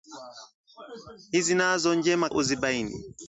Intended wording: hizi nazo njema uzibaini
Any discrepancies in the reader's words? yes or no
no